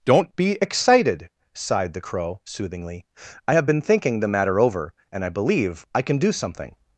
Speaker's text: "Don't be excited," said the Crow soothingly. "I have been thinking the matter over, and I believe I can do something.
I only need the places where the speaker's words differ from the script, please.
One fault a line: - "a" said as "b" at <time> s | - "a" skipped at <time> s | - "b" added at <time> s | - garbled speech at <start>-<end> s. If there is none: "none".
- "said" said as "sighed" at 1.5 s